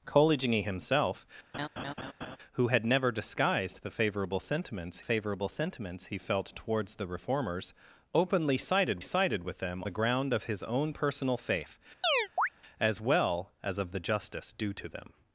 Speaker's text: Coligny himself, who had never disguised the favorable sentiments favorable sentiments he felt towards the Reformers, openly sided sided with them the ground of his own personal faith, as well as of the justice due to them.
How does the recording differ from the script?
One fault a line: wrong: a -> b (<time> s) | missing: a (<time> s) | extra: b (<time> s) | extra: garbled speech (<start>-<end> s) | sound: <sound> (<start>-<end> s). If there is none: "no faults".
sound: laugh (1.5-2.4 s)
sound: chirp (12.0-12.5 s)